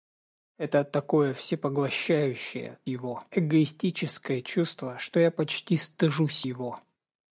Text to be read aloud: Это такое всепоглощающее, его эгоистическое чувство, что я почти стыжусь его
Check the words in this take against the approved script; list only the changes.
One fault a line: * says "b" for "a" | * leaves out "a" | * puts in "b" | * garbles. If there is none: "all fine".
all fine